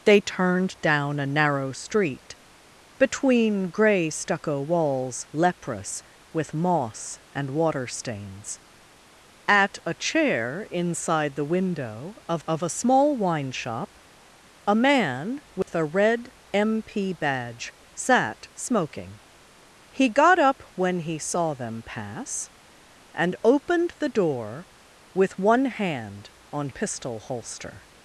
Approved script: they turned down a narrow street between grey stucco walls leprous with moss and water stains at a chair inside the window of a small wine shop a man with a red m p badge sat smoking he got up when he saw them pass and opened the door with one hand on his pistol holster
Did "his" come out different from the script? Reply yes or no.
yes